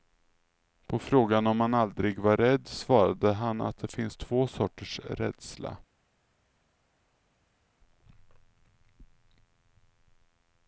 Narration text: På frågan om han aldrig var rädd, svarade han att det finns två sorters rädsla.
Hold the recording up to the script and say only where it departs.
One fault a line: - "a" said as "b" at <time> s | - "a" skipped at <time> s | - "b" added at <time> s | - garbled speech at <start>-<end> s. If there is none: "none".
none